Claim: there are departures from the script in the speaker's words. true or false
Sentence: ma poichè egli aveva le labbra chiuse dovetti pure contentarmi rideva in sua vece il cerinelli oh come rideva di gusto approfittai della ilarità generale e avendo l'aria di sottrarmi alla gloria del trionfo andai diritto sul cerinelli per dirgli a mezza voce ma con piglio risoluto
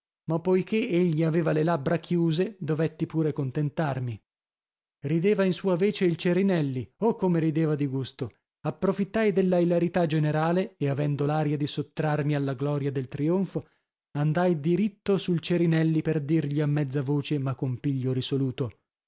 false